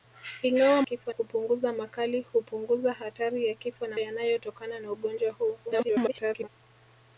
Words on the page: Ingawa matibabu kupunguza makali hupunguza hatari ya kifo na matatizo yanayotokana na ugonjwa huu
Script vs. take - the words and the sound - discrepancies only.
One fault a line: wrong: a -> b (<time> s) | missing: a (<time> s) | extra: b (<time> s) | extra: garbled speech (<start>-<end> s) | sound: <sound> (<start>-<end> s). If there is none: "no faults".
wrong: matibabu -> kifo (0.8 s)
missing: matatizo (4.0 s)
extra: garbled speech (5.7-6.5 s)